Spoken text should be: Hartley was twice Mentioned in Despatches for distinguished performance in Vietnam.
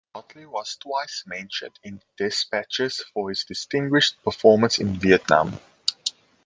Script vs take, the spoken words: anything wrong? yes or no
yes